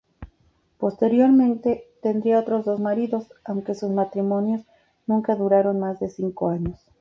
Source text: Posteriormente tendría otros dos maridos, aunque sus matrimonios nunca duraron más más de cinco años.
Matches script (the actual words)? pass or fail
fail